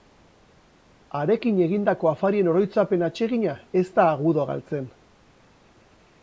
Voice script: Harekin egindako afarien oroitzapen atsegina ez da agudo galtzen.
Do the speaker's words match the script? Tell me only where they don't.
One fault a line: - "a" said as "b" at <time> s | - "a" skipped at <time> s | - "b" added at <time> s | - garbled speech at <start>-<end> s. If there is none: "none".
none